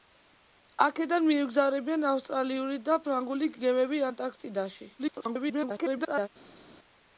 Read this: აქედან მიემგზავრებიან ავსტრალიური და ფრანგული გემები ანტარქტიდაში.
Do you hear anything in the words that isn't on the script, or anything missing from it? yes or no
yes